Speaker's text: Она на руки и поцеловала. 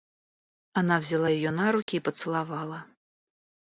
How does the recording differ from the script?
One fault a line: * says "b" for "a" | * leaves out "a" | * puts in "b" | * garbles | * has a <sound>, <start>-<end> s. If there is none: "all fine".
* puts in "взяла ее"
* has a dropout, 1.8-1.9 s